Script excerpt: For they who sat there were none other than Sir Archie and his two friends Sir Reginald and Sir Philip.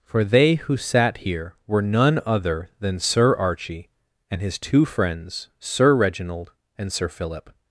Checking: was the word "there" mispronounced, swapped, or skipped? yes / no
yes